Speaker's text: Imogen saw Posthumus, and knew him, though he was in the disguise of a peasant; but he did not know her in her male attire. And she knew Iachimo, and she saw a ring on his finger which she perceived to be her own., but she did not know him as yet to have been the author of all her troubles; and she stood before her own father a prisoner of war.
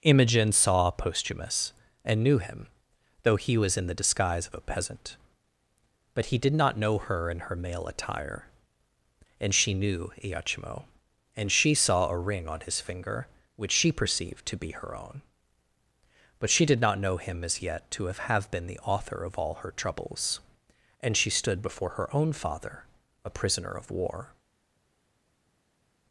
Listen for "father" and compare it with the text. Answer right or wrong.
right